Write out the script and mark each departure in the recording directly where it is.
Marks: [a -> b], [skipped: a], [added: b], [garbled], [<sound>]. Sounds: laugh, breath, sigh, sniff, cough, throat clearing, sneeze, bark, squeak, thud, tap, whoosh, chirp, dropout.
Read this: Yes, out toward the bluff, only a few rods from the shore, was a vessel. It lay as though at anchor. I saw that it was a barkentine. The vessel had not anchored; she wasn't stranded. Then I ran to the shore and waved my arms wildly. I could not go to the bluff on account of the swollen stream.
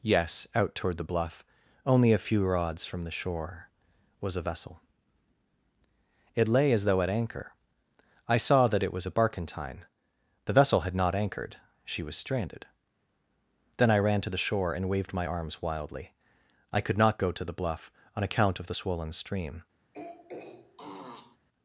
Yes, out toward the bluff, only a few rods from the shore, was a vessel. It lay as though at anchor. I saw that it was a barkentine. The vessel had not anchored; she [wasn't -> was] stranded. Then I ran to the shore and waved my arms wildly. I could not go to the bluff on account of the swollen stream. [throat clearing]